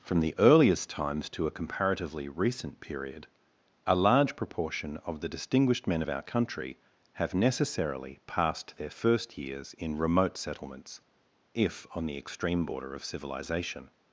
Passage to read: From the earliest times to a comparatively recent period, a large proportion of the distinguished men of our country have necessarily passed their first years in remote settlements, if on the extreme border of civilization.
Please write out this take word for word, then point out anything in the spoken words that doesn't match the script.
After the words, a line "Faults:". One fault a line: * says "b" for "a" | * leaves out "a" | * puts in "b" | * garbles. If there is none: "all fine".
From the earliest times to a comparatively recent period, a large proportion of the distinguished men of our country have necessarily passed their first years in remote settlements, if on the extreme border of civilization.
Faults:
all fine